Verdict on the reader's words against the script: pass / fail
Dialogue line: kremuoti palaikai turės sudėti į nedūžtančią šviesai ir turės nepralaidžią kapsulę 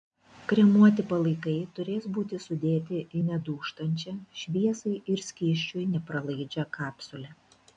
fail